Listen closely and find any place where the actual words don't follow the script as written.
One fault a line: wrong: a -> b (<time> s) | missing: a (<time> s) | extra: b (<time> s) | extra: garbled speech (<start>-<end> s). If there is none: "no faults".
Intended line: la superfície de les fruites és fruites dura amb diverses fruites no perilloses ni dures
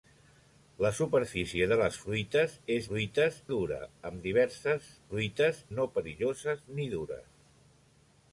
no faults